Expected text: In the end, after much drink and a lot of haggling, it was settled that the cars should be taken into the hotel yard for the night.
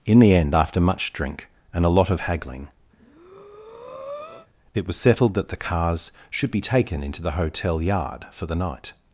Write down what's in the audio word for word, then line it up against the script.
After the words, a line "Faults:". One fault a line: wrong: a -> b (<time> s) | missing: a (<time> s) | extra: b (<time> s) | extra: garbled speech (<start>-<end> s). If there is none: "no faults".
In the end, after much drink and a lot of haggling, it was settled that the cars should be taken into the hotel yard for the night.
Faults:
no faults